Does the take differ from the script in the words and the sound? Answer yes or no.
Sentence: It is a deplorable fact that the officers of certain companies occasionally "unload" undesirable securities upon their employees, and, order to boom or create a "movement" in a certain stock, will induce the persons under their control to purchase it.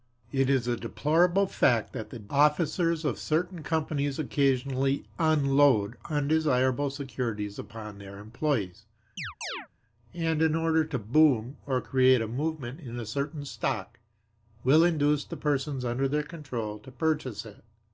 yes